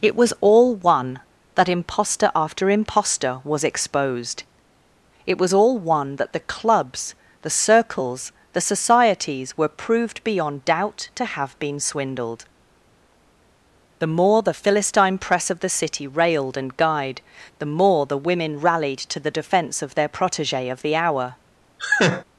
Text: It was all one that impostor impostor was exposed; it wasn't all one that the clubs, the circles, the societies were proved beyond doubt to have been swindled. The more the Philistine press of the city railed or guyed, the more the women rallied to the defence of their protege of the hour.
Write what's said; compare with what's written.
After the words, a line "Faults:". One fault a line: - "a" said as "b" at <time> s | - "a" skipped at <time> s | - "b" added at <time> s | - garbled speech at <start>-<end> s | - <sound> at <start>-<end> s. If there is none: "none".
It was all one that impostor after impostor was exposed; it was all one that the clubs, the circles, the societies were proved beyond doubt to have been swindled. The more the Philistine press of the city railed and guyed, the more the women rallied to the defence of their protege of the hour.
Faults:
- "after" added at 2.3 s
- "wasn't" said as "was" at 5.4 s
- "or" said as "and" at 16.6 s
- laugh at 21.8-22.2 s